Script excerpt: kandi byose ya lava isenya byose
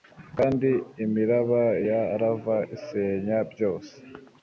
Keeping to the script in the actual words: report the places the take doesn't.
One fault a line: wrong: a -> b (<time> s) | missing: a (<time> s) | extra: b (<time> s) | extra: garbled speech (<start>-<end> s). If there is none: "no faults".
wrong: byose -> imiraba (1.1 s)